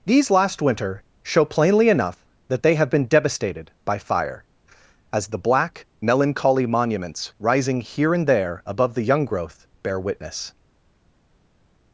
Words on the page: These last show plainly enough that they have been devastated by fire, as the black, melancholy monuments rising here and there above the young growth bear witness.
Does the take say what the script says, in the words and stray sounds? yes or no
no